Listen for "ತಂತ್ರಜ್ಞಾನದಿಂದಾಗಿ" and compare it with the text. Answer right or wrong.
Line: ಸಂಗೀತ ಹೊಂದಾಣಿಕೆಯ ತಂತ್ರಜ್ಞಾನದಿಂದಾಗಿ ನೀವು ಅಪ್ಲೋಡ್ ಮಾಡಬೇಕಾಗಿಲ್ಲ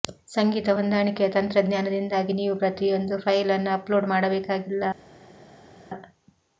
right